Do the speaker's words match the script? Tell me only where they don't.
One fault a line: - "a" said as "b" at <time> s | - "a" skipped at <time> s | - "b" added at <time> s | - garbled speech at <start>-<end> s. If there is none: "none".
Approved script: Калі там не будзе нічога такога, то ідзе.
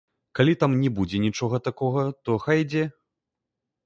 - "хай" added at 2.5 s